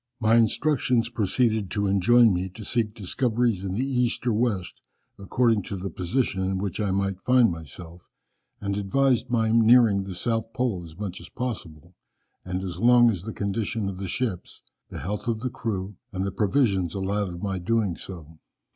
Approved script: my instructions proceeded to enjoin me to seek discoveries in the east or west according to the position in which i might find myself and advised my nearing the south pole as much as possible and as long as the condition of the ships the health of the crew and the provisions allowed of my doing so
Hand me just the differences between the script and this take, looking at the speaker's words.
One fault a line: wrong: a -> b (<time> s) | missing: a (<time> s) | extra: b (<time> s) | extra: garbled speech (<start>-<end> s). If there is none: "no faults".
no faults